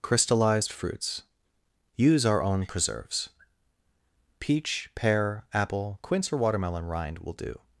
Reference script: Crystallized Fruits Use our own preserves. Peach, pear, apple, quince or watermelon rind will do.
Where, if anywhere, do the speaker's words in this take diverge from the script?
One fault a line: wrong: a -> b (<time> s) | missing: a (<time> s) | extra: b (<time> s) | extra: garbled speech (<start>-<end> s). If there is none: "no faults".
no faults